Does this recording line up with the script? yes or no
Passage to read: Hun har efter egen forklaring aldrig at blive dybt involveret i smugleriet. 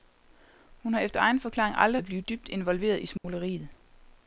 yes